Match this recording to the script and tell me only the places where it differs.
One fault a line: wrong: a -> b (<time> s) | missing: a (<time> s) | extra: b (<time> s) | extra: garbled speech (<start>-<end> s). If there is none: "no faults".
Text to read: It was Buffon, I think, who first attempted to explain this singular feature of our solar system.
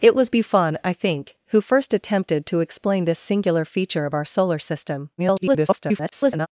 extra: garbled speech (5.2-6.5 s)